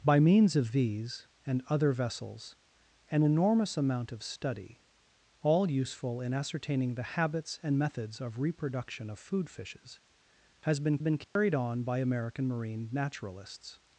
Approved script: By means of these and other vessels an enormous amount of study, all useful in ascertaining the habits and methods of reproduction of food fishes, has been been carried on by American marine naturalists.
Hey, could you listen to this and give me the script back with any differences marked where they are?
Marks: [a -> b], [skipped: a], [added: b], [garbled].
By means of these and other vessels an enormous amount of study, all useful in ascertaining the habits and methods of reproduction of food fishes, has been been carried on by American marine naturalists.